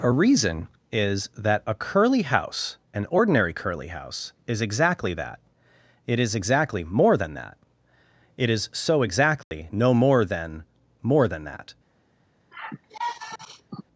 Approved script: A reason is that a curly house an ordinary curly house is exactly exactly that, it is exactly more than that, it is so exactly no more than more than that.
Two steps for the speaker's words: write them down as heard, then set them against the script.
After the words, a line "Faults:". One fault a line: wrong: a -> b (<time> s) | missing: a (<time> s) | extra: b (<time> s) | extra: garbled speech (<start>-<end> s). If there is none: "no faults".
A reason is that a curly house an ordinary curly house is exactly that, it is exactly more than that, it is so exactly no more than more than that.
Faults:
missing: exactly (5.1 s)